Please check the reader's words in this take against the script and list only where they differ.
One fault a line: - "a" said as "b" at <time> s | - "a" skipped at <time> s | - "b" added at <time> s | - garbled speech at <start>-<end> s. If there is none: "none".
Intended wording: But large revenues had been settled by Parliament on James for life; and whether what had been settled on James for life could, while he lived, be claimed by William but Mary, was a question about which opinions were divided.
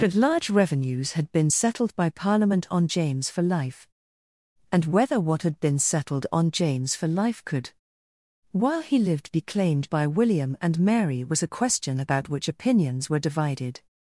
- "but" said as "and" at 10.6 s